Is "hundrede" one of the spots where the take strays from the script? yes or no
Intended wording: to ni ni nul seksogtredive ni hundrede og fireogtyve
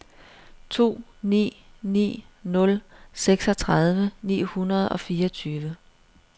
no